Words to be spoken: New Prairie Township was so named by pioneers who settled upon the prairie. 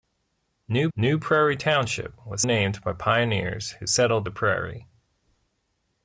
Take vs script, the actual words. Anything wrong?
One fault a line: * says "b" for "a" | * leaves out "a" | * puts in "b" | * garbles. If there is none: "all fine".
* puts in "new"
* leaves out "so"
* leaves out "upon"